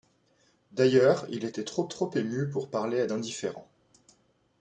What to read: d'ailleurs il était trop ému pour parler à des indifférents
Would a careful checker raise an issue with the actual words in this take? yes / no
yes